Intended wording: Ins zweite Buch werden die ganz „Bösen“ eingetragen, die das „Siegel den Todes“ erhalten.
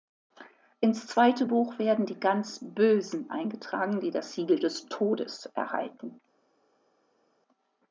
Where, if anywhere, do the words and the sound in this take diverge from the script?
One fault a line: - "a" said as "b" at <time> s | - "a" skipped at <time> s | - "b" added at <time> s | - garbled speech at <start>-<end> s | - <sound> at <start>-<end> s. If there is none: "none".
- "den" said as "des" at 4.6 s